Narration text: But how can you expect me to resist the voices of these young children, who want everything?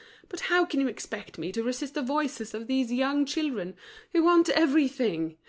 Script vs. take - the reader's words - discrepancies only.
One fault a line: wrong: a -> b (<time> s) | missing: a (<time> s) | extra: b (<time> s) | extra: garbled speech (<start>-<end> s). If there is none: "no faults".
no faults